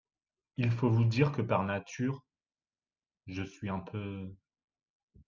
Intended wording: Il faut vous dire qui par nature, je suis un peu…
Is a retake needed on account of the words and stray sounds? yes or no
yes